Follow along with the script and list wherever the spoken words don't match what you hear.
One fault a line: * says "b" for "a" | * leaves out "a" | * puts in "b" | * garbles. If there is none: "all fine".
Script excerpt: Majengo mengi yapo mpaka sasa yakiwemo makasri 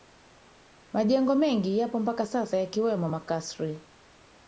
all fine